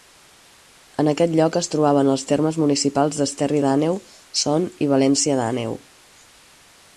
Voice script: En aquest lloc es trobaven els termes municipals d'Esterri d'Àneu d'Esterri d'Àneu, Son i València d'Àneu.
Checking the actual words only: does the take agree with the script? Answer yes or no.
no